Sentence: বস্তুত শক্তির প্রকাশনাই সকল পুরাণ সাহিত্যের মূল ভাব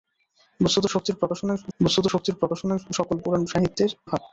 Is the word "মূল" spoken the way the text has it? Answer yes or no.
no